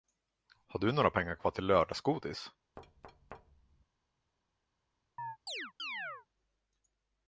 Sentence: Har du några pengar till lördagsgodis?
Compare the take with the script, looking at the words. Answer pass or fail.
fail